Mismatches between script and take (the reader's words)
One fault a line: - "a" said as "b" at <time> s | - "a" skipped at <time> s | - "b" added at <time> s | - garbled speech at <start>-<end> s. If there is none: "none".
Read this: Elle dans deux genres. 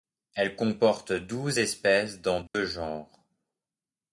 - "comporte douze espèces" added at 0.6 s